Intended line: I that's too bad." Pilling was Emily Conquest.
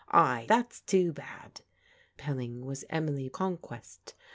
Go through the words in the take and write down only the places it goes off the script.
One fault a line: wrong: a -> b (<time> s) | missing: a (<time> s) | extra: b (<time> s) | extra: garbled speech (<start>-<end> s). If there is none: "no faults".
no faults